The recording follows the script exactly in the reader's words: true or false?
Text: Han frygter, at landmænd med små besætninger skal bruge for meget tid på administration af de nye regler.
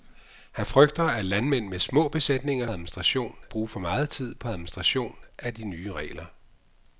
false